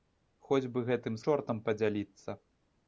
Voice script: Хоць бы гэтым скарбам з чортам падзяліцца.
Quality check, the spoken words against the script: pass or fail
fail